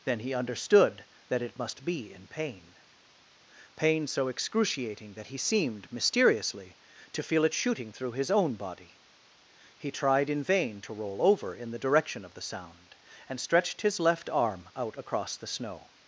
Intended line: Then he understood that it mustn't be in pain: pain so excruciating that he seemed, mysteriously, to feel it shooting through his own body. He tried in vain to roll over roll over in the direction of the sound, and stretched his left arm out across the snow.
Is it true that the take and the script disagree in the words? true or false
true